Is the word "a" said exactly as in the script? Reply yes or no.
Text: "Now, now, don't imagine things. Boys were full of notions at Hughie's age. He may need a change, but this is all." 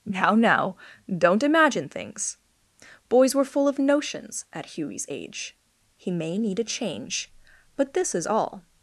yes